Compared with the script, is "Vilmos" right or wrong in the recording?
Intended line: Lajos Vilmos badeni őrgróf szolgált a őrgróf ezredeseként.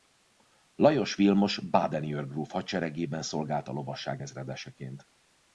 right